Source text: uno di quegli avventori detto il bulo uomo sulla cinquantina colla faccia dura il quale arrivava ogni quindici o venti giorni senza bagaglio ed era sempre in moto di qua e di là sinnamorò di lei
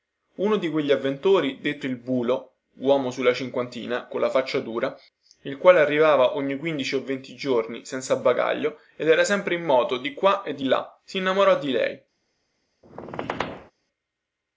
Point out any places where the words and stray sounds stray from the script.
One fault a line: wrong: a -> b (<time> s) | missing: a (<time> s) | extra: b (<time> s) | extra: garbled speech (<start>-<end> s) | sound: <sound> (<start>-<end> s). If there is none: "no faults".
sound: squeak (12.8-13.7 s)